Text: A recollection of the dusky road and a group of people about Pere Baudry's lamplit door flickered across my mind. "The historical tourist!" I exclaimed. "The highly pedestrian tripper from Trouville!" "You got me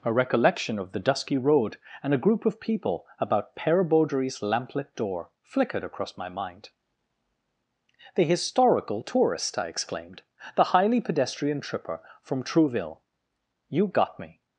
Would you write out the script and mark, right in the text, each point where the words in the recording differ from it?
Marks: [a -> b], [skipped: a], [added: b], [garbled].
A recollection of the dusky road and a group of people about Pere Baudry's lamplit door flickered across my mind. "The historical tourist!" I exclaimed. "The highly pedestrian tripper from Trouville!" "You got me